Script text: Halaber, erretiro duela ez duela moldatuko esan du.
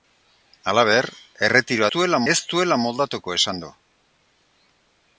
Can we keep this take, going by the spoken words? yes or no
yes